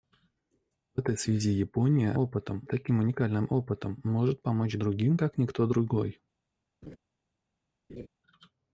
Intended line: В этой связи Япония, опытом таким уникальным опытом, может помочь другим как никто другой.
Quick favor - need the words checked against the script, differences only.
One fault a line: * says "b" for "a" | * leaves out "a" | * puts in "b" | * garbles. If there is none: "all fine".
all fine